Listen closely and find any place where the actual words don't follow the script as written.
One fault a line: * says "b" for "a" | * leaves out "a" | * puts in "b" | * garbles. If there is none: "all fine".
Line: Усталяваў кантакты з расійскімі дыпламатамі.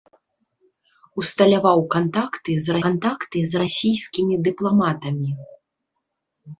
* puts in "кантакты з"